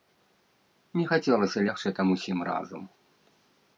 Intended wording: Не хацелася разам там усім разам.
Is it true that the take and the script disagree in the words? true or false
true